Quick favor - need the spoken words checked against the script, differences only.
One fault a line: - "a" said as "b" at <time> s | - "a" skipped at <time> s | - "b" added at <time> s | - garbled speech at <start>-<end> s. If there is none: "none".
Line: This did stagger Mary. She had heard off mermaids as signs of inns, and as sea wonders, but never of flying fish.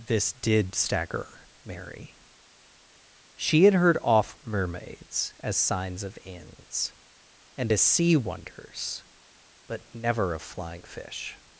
none